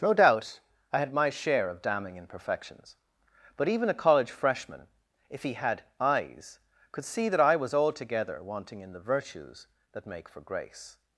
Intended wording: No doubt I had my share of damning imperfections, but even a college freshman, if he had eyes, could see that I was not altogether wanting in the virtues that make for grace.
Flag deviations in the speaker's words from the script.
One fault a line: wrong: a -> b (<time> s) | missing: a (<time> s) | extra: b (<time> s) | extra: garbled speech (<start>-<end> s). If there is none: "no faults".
missing: not (7.7 s)